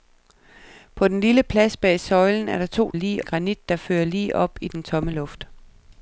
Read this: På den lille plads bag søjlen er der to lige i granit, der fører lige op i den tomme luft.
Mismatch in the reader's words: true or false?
false